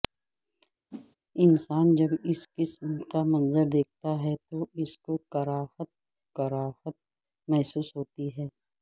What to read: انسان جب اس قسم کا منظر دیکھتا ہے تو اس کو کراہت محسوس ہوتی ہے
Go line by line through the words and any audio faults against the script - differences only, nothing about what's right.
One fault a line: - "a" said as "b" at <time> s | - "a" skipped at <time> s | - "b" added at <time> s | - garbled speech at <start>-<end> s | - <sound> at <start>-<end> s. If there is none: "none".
- whoosh at 0.9-1.2 s
- "کراہت" added at 6.4 s